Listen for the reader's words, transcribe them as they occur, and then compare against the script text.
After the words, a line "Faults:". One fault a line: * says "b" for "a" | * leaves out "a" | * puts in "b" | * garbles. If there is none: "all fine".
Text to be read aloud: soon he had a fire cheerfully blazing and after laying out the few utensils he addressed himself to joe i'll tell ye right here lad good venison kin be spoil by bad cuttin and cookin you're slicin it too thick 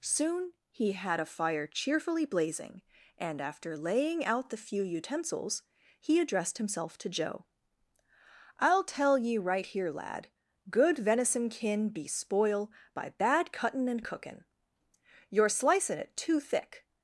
soon he had a fire cheerfully blazing and after laying out the few utensils he addressed himself to joe i'll tell ye right here lad good venison kin be spoil by bad cuttin and cookin you're slicin it too thick
Faults:
all fine